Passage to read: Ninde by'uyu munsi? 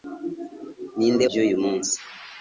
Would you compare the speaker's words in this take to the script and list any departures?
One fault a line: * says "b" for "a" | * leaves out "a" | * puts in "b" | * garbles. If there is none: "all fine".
all fine